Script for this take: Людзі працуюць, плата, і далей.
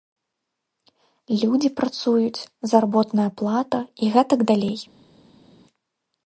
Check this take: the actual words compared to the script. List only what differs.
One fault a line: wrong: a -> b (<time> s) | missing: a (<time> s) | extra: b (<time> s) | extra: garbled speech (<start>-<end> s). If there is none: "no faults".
extra: заработная (2.7 s)
extra: гэтак (4.2 s)